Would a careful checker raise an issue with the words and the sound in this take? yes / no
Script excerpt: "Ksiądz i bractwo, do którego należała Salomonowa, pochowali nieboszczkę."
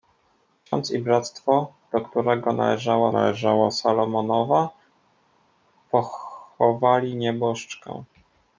yes